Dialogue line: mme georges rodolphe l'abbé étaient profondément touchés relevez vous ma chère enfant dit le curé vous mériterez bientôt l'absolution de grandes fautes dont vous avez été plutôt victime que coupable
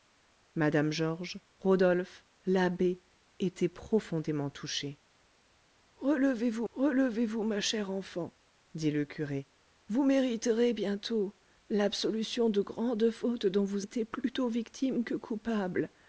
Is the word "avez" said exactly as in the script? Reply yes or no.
no